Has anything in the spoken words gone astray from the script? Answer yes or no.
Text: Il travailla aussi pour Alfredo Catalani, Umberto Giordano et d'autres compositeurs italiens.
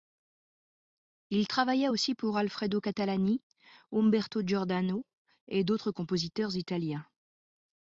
no